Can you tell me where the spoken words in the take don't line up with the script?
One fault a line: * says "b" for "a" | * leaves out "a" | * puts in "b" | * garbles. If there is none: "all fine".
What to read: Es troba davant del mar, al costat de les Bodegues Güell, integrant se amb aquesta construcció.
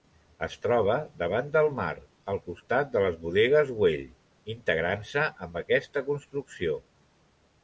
all fine